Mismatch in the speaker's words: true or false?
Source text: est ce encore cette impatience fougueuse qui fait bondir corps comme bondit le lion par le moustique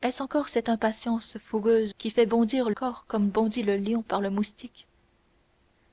false